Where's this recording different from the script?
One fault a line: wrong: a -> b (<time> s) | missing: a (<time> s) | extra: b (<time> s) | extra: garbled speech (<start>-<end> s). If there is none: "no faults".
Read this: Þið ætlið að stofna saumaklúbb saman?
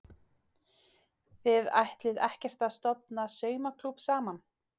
extra: ekkert (2.3 s)